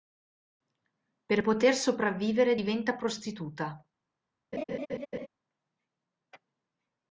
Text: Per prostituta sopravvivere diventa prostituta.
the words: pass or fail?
fail